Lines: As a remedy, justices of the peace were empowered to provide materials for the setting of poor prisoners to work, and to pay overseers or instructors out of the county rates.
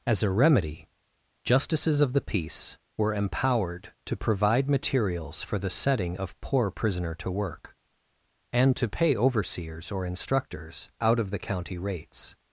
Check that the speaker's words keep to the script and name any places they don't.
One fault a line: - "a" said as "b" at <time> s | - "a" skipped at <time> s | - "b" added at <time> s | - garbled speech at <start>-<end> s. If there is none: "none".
- "prisoners" said as "prisoner" at 6.7 s